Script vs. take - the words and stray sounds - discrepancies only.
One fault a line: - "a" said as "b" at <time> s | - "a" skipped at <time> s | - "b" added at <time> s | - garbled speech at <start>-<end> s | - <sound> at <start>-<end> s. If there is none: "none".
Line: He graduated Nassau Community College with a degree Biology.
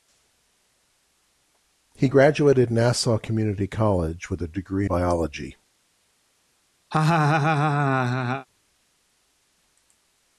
- laugh at 6.9-8.5 s